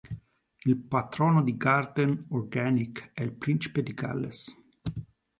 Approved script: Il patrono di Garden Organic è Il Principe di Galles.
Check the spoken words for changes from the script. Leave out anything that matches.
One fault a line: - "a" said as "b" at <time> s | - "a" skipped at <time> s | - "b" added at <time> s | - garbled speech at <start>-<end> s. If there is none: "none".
none